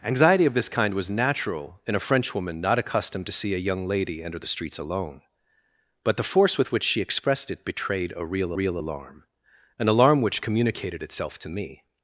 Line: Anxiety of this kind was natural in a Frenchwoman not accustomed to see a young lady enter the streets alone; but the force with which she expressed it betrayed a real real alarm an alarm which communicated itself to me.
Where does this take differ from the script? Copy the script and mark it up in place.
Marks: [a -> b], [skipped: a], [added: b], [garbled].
Anxiety of this kind was natural in a Frenchwoman not accustomed to see a young lady enter the streets alone; but the force with which she expressed it betrayed a real real alarm an alarm which communicated itself to me.